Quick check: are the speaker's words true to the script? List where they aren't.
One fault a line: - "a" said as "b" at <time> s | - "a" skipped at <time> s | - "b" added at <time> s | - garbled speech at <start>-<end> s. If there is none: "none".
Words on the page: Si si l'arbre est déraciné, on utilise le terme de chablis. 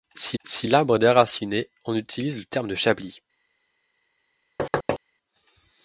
none